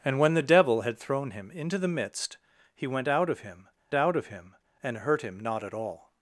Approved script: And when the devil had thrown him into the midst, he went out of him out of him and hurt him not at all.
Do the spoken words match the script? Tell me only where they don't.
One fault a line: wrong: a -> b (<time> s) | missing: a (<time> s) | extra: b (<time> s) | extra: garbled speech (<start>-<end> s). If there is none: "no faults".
no faults